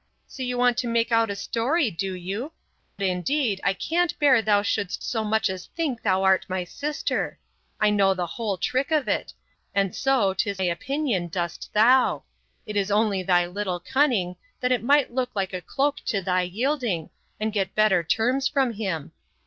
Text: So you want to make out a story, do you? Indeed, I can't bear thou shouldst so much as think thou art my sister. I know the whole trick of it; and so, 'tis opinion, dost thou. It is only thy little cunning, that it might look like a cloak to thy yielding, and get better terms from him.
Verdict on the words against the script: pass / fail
pass